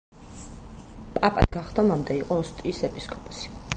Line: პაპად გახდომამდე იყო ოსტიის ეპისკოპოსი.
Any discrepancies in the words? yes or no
no